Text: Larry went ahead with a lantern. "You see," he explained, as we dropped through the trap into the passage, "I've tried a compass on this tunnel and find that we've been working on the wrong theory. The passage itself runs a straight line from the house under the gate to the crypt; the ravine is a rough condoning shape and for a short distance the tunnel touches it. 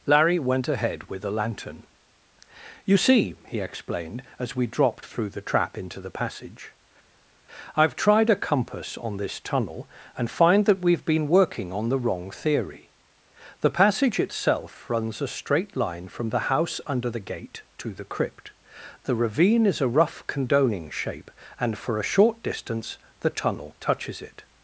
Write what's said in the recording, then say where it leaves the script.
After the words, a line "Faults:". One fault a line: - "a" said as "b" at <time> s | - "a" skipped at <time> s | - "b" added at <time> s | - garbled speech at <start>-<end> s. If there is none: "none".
Larry went ahead with a lantern. "You see," he explained, as we dropped through the trap into the passage, "I've tried a compass on this tunnel and find that we've been working on the wrong theory. The passage itself runs a straight line from the house under the gate to the crypt; the ravine is a rough condoning shape and for a short distance the tunnel touches it.
Faults:
none